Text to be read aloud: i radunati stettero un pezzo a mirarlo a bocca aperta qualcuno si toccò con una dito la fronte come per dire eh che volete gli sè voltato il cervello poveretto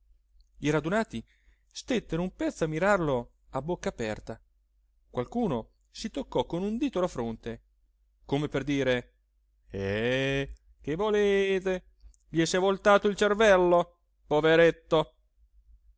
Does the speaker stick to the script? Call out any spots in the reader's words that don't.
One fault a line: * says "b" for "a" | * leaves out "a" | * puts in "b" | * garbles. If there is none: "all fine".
* says "un" for "una"